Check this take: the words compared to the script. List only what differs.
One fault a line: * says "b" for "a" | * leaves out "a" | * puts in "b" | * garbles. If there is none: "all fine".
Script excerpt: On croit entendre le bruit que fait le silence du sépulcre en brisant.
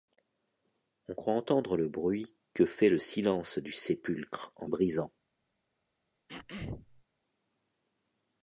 all fine